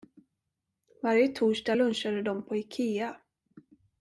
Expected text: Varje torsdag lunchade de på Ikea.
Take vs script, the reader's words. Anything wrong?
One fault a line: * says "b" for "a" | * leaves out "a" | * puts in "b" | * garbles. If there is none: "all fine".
all fine